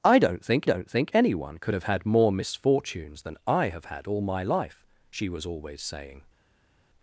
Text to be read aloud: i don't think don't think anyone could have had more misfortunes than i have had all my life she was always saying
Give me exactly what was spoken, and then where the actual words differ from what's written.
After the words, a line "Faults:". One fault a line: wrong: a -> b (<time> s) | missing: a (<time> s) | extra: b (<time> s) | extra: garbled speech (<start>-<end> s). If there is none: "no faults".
i don't think don't think anyone could have had more misfortunes than i have had all my life she was always saying
Faults:
no faults